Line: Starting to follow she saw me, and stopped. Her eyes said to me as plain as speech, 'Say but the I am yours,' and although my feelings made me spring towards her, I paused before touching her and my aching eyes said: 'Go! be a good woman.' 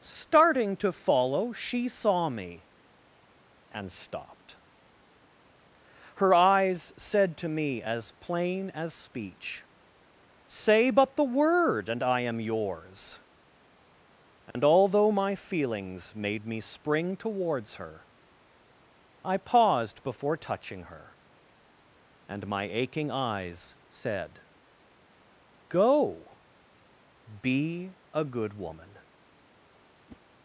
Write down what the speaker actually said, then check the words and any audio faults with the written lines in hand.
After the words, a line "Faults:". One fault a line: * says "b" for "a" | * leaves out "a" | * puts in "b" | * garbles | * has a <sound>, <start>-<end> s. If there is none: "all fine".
Starting to follow she saw me, and stopped. Her eyes said to me as plain as speech, 'Say but the word and I am yours,' and although my feelings made me spring towards her, I paused before touching her and my aching eyes said: 'Go! be a good woman.'
Faults:
* puts in "word and"
* has a dropout, 14.5-14.6 s
* has a whoosh, 30.1-30.2 s